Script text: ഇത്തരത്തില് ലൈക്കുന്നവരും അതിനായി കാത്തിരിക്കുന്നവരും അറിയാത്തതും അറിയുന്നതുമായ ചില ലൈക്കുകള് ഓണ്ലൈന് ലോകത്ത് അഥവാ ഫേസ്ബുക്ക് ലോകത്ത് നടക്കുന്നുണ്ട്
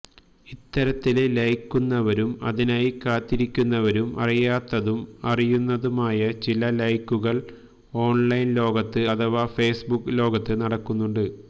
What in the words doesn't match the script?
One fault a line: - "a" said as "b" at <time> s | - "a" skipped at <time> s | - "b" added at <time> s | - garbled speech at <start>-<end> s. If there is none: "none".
none